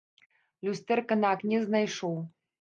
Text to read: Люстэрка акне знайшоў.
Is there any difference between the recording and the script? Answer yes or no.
yes